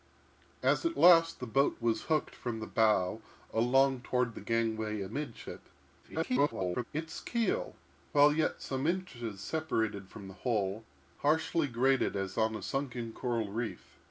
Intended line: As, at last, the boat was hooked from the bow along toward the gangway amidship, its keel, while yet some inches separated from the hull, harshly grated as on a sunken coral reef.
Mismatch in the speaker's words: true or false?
true